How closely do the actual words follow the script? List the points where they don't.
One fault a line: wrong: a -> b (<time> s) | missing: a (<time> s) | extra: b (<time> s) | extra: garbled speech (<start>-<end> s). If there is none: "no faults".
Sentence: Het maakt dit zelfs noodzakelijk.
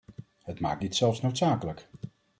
no faults